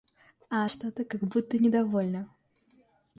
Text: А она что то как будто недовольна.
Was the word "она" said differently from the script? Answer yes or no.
yes